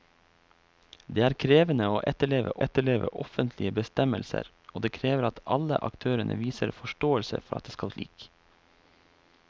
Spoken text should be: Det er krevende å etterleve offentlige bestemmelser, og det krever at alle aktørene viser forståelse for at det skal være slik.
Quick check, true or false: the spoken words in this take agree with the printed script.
false